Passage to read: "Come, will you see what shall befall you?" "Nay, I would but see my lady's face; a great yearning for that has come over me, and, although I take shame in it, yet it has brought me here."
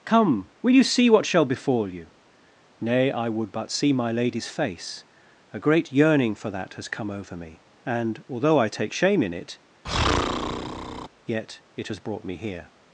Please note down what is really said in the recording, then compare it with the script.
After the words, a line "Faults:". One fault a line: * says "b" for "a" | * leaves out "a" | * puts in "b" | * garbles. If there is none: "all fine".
"Come, will you see what shall befall you?" "Nay, I would but see my lady's face; a great yearning for that has come over me, and, although I take shame in it, yet it has brought me here."
Faults:
all fine